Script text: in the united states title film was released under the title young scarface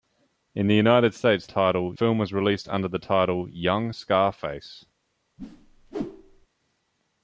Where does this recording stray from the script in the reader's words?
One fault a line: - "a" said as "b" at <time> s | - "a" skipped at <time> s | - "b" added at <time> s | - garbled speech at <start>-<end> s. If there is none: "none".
none